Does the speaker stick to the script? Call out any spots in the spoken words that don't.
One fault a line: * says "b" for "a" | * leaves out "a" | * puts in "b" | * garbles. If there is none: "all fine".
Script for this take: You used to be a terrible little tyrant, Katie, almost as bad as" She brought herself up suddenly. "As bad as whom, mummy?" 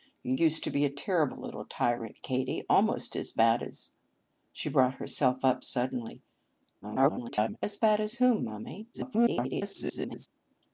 * garbles
* garbles